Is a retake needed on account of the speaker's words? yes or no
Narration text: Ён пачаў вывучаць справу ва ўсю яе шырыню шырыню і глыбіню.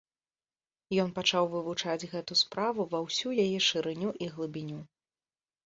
yes